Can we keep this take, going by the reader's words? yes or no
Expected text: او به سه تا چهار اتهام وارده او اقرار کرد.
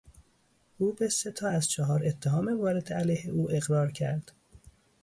no